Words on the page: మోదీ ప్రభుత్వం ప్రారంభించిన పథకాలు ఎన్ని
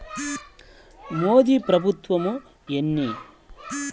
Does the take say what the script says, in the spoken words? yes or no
no